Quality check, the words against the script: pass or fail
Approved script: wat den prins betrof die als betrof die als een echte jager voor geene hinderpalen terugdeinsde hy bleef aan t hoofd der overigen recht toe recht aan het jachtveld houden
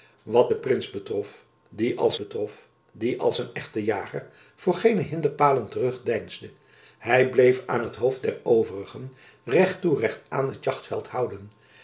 pass